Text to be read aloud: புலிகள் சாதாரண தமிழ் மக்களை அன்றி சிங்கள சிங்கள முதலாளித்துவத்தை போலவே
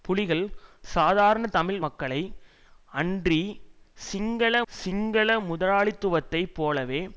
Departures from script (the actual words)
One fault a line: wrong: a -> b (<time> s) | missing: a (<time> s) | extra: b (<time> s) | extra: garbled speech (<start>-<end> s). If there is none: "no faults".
no faults